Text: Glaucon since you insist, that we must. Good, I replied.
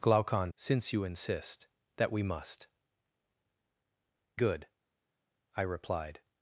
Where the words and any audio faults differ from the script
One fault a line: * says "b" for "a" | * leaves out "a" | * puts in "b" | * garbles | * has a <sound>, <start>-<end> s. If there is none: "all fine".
all fine